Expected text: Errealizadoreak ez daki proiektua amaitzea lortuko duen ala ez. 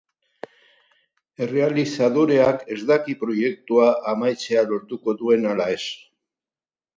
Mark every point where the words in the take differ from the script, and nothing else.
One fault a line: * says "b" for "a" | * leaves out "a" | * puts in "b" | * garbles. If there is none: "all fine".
all fine